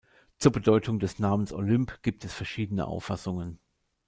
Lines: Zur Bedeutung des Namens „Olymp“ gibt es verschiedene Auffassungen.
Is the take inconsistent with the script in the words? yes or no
no